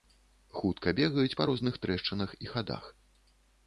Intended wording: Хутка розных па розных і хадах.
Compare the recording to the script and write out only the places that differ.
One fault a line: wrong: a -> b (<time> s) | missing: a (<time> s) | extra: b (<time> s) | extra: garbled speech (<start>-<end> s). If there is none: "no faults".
wrong: розных -> бегаюць (1.0 s)
extra: трэшчынах (1.9 s)